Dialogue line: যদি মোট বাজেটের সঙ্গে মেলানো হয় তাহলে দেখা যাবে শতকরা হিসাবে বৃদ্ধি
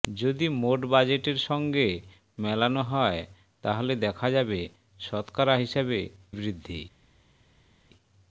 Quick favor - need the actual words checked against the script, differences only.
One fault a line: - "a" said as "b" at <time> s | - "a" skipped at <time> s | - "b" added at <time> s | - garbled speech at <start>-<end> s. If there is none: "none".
none